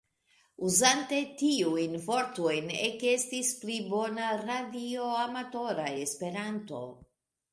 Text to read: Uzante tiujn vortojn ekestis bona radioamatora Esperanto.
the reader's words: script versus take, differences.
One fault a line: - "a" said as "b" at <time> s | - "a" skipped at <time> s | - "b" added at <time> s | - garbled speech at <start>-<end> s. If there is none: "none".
- "pli" added at 3.6 s